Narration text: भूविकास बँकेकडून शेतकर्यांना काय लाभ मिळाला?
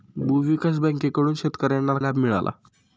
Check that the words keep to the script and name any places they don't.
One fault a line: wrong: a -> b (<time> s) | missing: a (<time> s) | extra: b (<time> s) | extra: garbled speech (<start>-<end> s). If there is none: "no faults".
missing: काय (2.0 s)